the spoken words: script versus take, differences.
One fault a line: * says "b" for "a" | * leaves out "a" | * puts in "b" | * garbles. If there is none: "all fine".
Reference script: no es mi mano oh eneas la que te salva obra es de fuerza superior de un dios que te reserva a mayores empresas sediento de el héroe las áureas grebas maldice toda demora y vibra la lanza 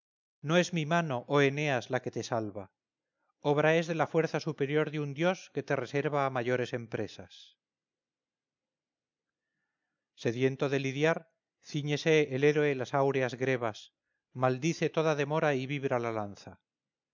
* puts in "la"
* puts in "lidiar cíñese"